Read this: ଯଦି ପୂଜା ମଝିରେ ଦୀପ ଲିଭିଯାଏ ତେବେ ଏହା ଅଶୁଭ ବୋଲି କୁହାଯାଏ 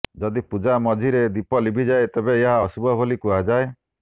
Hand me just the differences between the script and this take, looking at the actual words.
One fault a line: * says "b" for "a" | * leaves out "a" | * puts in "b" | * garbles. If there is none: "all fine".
all fine